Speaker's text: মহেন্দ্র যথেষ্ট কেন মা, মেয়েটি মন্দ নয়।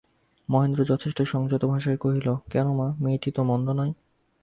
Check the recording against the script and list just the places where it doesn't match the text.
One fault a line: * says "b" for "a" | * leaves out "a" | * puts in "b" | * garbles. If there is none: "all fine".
* puts in "সংযত ভাষায় কহিল"
* puts in "তো"